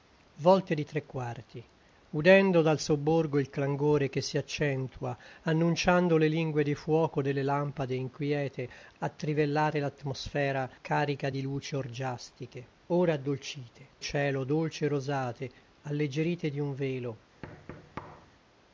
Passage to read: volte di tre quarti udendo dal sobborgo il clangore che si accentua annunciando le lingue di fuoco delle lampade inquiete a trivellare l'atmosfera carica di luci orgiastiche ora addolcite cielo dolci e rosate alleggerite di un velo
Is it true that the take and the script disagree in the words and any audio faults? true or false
true